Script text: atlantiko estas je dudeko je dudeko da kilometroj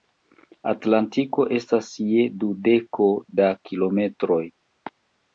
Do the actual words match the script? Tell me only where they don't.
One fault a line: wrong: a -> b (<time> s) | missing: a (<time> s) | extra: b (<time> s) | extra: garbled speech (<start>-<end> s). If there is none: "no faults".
missing: je dudeko (3.1 s)